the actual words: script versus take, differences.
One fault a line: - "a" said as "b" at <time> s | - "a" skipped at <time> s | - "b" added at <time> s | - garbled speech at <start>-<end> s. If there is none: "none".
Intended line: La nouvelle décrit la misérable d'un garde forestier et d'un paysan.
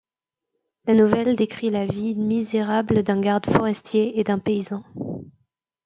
- "vie" added at 1.8 s